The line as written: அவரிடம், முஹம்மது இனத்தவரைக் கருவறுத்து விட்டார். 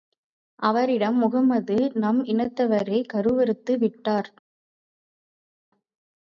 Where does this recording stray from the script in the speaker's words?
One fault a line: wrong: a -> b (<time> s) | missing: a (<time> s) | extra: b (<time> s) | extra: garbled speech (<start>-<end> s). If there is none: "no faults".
extra: நம் (1.9 s)